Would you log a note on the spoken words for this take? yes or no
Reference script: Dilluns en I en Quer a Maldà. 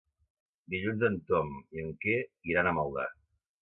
yes